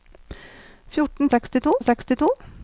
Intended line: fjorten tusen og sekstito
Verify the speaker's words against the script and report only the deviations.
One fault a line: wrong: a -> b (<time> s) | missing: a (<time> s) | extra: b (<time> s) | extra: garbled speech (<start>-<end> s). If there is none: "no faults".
wrong: tusen -> sekstito (1.3 s)